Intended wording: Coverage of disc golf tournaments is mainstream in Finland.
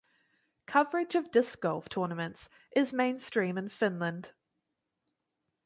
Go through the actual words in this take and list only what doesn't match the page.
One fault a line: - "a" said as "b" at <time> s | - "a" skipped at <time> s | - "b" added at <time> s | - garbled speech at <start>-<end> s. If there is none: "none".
none